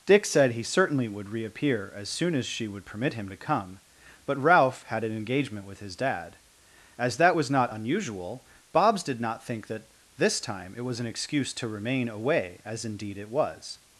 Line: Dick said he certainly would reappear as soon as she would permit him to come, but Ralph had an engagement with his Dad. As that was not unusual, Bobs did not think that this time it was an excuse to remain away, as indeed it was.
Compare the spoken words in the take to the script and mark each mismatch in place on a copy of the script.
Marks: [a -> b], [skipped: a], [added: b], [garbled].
Dick said he certainly would reappear as soon as she would permit him to come, but Ralph had an engagement with his Dad. As that was not unusual, Bobs did not think that this time it was an excuse to remain away, as indeed it was.